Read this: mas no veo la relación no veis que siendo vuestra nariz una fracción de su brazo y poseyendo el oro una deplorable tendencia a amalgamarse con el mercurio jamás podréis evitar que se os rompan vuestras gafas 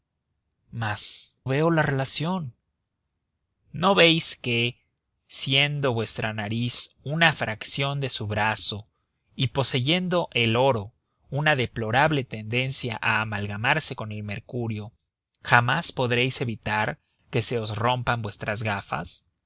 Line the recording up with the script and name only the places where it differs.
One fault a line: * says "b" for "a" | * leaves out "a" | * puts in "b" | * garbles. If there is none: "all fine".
* leaves out "no"